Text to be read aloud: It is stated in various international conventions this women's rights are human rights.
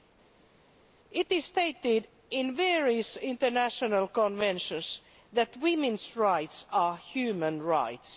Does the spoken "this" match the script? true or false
false